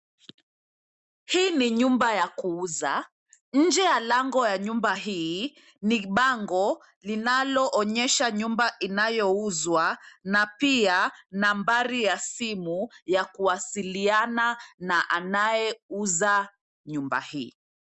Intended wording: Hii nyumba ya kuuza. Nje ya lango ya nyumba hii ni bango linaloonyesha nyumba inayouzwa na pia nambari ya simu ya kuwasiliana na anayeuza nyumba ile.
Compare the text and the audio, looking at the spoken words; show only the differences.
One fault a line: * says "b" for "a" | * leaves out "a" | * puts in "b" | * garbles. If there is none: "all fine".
* puts in "ni"
* says "hii" for "ile"